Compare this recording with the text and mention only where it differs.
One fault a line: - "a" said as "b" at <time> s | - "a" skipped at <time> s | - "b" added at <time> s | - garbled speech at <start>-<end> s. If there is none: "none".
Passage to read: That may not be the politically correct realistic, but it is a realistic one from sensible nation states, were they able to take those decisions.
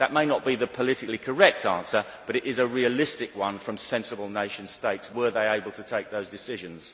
- "realistic" said as "answer" at 1.6 s